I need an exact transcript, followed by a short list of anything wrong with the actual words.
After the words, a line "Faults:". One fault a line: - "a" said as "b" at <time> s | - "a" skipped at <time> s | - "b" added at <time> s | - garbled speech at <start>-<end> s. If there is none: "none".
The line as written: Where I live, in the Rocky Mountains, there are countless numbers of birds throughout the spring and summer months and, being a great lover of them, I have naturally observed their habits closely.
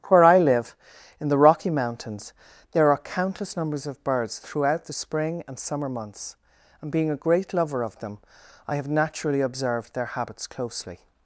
Where I live, in the Rocky Mountains, there are countless numbers of birds throughout the spring and summer months and, being a great lover of them, I have naturally observed their habits closely.
Faults:
none